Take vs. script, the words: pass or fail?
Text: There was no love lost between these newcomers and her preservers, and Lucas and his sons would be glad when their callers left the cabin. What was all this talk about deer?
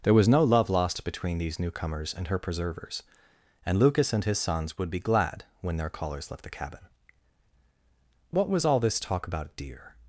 pass